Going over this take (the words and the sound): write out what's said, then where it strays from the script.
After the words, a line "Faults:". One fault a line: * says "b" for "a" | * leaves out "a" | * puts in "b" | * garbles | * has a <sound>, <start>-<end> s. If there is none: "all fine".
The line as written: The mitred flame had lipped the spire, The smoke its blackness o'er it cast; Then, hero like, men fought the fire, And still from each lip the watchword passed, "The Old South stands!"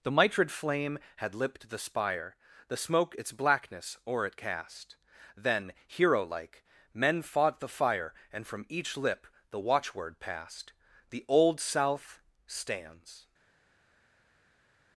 The mitred flame had lipped the spire, The smoke its blackness o'er it cast; Then, hero like, men fought the fire, And from each lip the watchword passed, "The Old South stands!"
Faults:
* leaves out "still"